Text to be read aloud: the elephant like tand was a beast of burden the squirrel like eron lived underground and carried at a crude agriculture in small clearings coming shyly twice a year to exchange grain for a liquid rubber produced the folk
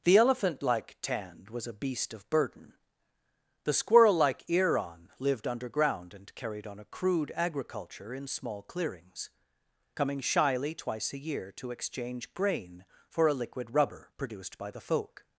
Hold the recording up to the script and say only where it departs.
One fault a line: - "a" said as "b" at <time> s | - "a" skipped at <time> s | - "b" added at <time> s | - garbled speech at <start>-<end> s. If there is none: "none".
- "at" said as "on" at 6.7 s
- "by" added at 14.6 s